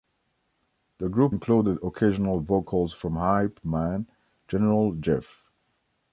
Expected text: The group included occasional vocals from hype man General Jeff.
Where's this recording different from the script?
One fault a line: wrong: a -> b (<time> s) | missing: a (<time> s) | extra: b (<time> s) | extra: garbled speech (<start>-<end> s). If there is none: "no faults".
no faults